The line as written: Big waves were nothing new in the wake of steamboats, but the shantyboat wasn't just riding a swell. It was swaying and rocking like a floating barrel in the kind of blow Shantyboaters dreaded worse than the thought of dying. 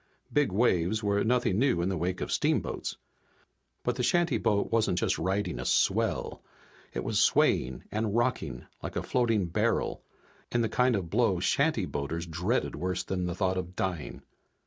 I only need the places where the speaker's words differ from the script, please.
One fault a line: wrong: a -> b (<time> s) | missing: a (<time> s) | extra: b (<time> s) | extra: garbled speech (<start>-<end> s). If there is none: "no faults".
no faults